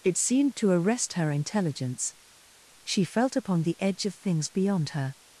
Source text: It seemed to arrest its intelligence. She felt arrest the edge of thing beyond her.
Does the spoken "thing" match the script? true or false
false